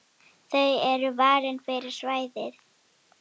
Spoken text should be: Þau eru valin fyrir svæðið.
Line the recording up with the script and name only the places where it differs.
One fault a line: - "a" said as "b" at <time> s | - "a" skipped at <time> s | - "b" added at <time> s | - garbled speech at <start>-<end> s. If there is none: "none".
none